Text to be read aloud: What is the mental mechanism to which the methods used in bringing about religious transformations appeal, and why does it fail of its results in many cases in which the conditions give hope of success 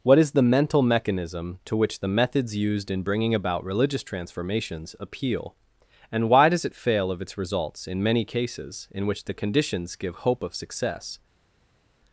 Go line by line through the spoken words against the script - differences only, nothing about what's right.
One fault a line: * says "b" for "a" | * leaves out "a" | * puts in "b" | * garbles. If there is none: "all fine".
all fine